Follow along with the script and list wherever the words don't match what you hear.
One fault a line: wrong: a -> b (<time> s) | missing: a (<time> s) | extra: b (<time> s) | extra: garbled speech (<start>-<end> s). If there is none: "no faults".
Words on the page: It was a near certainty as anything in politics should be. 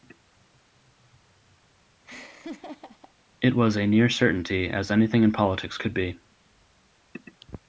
wrong: should -> could (5.8 s)